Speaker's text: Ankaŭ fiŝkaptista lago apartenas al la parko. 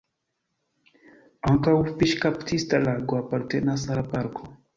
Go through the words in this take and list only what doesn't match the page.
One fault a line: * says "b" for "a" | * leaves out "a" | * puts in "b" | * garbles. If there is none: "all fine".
* leaves out "al"